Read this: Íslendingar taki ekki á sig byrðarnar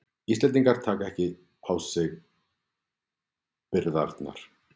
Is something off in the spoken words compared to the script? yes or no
no